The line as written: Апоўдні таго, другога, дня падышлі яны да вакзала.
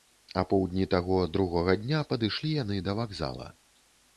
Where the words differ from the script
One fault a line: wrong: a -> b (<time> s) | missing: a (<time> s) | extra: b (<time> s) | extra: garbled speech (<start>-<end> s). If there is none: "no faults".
no faults